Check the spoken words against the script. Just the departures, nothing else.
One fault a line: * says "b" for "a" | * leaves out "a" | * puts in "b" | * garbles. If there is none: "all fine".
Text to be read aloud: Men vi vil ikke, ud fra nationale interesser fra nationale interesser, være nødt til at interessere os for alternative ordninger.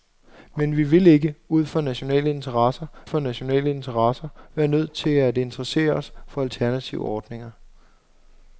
all fine